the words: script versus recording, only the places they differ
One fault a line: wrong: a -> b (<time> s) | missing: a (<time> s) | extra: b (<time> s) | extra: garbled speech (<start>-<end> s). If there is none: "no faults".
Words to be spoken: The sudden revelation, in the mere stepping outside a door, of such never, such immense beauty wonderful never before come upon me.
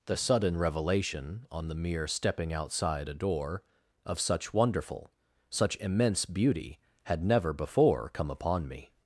wrong: in -> on (1.5 s)
wrong: never -> wonderful (4.5 s)
wrong: wonderful -> had (7.0 s)